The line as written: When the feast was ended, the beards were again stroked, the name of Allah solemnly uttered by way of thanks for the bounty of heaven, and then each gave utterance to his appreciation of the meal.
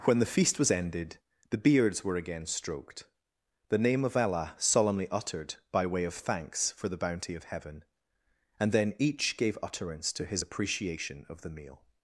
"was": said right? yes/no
yes